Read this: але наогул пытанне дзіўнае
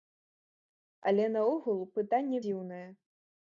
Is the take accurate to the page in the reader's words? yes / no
yes